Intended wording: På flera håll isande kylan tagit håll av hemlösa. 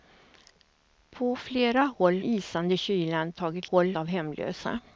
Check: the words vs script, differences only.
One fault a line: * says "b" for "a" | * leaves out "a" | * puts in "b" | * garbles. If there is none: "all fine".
all fine